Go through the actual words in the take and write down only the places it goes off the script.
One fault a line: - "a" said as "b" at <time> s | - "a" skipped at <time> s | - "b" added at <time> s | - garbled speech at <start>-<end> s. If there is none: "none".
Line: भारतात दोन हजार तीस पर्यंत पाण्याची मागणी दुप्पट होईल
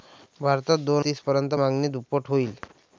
- "हजार" skipped at 1.1 s
- "पाण्याची" skipped at 1.5 s